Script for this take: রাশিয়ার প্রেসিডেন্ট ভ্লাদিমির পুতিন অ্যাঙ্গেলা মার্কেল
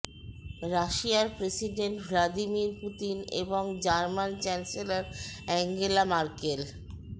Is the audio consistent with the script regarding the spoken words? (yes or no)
no